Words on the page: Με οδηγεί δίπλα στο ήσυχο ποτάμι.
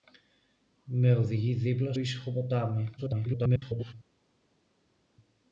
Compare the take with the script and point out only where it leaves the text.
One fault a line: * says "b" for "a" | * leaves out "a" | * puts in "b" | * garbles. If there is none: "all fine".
* leaves out "στο"
* garbles